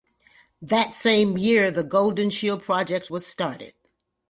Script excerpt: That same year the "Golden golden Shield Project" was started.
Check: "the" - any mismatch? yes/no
no